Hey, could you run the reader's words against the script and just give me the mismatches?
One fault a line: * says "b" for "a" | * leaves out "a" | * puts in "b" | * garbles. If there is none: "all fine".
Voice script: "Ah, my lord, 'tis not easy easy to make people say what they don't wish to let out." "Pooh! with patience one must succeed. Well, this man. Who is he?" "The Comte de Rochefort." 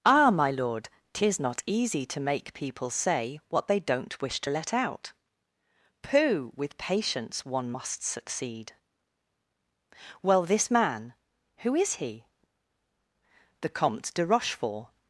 * leaves out "easy"